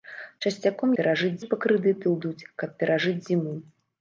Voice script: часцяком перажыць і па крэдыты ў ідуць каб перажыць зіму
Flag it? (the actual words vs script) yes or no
no